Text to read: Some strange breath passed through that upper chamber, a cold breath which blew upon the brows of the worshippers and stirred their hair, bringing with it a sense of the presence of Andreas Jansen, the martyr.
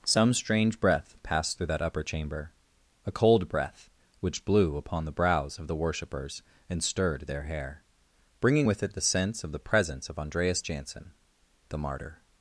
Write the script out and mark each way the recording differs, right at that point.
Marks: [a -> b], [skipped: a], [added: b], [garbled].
Some strange breath passed through that upper chamber, a cold breath which blew upon the brows of the worshippers and stirred their hair, bringing with it [a -> the] sense of the presence of Andreas Jansen, the martyr.